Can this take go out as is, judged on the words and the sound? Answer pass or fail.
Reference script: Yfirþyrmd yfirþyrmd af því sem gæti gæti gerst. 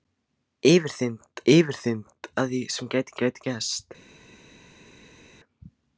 pass